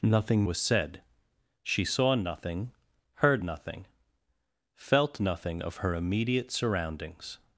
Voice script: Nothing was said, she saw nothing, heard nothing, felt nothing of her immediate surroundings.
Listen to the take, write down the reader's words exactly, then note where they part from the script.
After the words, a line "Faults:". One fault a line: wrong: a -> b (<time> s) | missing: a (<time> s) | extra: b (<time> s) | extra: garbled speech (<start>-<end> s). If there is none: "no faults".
Nothing was said, she saw nothing, heard nothing, felt nothing of her immediate surroundings.
Faults:
no faults